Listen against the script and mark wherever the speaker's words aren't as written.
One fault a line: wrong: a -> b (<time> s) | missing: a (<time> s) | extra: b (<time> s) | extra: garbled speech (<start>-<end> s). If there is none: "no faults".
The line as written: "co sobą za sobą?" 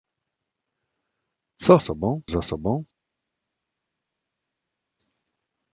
no faults